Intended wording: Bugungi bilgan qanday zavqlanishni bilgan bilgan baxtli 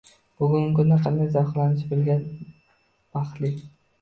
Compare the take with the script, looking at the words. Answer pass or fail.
fail